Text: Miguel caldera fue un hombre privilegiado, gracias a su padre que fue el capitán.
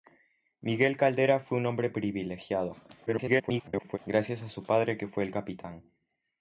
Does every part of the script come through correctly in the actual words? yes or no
no